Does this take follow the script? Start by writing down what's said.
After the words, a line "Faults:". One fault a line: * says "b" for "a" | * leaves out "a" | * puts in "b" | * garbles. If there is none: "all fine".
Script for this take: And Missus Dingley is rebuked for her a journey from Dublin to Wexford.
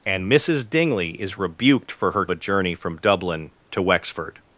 And Missus Dingley is rebuked for her a journey from Dublin to Wexford.
Faults:
all fine